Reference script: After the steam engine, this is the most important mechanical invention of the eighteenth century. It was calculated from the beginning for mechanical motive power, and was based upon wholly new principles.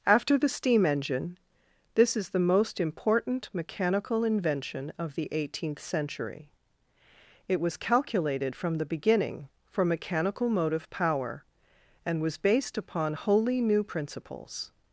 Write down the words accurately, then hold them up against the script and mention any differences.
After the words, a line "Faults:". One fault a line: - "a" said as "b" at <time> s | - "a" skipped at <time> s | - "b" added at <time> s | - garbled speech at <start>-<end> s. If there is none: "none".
After the steam engine, this is the most important mechanical invention of the eighteenth century. It was calculated from the beginning for mechanical motive power, and was based upon wholly new principles.
Faults:
none